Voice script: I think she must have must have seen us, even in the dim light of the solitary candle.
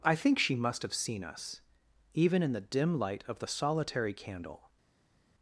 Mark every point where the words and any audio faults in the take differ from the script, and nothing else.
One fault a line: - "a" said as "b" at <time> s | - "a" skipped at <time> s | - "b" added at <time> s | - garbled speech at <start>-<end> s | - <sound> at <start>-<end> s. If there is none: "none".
- "must have" skipped at 0.9 s